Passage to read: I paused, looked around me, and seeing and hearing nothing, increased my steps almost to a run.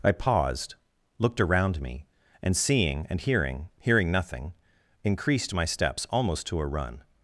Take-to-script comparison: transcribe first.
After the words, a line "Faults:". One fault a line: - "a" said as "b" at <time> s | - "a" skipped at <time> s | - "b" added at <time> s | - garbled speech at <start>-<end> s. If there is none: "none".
I paused, looked around me, and seeing and hearing hearing nothing, increased my steps almost to a run.
Faults:
- "hearing" added at 3.8 s